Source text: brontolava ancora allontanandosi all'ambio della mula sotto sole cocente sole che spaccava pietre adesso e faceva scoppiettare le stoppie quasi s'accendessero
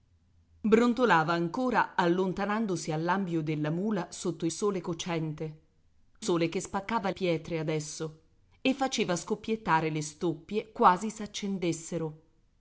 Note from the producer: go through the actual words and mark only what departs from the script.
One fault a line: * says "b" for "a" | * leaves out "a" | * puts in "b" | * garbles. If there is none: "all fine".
all fine